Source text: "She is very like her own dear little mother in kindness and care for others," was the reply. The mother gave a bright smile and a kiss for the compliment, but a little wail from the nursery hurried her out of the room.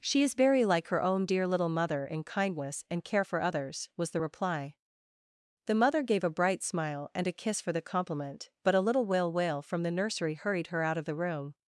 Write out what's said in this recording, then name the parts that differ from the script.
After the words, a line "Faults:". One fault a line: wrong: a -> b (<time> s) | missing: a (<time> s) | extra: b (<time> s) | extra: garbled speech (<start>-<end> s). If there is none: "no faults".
"She is very like her own dear little mother in kindness and care for others," was the reply. The mother gave a bright smile and a kiss for the compliment, but a little wail wail from the nursery hurried her out of the room.
Faults:
extra: wail (9.3 s)